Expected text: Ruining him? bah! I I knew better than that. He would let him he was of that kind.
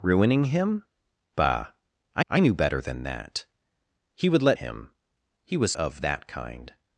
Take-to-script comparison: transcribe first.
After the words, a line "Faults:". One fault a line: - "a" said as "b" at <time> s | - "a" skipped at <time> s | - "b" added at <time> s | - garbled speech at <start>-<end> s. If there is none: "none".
Ruining him? bah! I I knew better than that. He would let him he was of that kind.
Faults:
none